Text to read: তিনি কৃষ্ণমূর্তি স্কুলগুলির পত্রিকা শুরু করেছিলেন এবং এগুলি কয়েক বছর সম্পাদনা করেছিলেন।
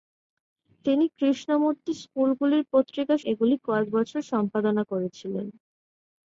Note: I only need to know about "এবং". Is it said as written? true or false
false